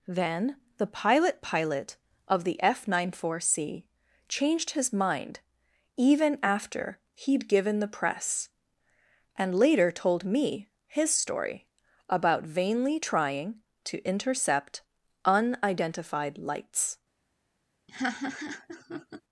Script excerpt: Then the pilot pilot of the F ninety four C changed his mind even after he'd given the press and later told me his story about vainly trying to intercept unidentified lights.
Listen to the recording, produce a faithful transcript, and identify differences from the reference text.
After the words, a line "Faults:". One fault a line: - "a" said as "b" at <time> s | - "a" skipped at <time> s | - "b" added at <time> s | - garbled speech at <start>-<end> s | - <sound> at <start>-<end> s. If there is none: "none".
Then the pilot pilot of the F ninety four C changed his mind even after he'd given the press and later told me his story about vainly trying to intercept unidentified lights.
Faults:
- laugh at 17.9-19.2 s